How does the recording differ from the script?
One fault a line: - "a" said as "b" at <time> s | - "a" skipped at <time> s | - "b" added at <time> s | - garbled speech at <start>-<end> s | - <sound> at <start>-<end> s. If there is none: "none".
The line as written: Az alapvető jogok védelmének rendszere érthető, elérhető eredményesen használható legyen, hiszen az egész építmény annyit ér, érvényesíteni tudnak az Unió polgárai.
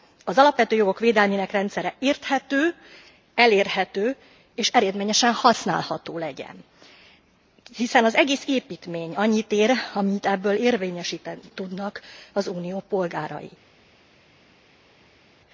- "és" added at 4.5 s
- "amennyit ebből" added at 9.9 s